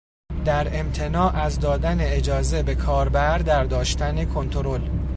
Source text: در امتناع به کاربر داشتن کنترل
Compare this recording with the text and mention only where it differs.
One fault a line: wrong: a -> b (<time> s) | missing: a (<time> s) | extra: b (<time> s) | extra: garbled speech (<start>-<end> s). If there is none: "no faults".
extra: از دادن اجازه (1.4 s)
extra: در (3.4 s)